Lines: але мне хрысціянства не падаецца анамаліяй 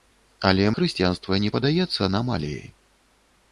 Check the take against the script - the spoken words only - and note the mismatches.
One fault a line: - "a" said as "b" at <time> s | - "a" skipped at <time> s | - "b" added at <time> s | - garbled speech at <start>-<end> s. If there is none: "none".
- "мне" skipped at 0.6 s